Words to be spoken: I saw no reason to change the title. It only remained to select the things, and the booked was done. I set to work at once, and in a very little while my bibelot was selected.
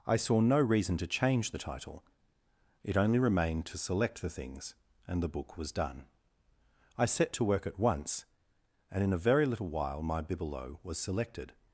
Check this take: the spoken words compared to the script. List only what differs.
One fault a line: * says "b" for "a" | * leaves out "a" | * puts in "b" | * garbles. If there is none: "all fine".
* says "book" for "booked"